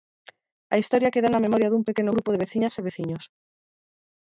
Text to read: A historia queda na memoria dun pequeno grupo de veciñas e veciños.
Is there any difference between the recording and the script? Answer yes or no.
no